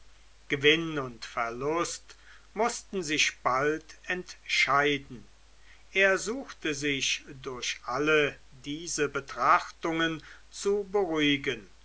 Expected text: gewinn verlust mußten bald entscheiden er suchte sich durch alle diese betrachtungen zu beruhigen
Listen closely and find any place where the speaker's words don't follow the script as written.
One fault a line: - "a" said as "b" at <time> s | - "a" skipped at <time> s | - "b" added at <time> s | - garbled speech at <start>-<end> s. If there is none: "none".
- "und" added at 1.0 s
- "sich" added at 3.0 s